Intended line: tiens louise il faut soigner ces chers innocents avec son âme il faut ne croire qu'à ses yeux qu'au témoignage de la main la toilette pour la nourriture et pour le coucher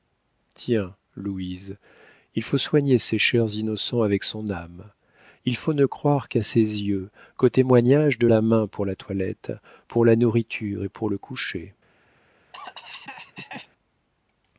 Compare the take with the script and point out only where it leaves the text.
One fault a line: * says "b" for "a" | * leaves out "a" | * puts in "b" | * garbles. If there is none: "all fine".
* puts in "pour"